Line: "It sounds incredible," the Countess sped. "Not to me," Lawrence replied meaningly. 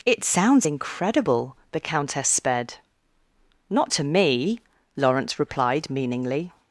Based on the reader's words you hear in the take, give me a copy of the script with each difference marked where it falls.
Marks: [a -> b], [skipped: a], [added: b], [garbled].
"It sounds incredible," the Countess sped. "Not to me," Lawrence replied meaningly.